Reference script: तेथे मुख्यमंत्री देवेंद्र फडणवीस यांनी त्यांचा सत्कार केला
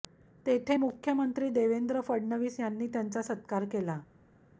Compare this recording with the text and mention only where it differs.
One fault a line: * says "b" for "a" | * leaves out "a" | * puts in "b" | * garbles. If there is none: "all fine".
all fine